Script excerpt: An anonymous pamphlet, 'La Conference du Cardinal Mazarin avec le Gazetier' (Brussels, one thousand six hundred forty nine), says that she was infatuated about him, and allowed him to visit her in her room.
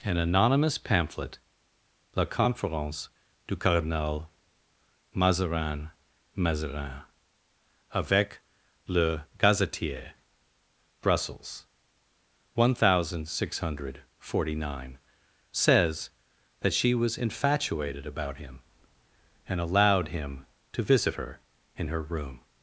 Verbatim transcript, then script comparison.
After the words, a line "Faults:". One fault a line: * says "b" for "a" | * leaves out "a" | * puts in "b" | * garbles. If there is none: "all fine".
An anonymous pamphlet, 'La Conference du Cardinal Mazarin Mazarin avec le Gazetier' (Brussels, one thousand six hundred forty nine), says that she was infatuated about him, and allowed him to visit her in her room.
Faults:
* puts in "Mazarin"